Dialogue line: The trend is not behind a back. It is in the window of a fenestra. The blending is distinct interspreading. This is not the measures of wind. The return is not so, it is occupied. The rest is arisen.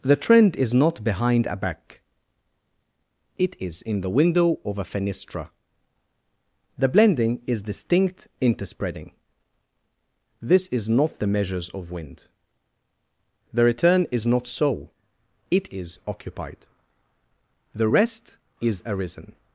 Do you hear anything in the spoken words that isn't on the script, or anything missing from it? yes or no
no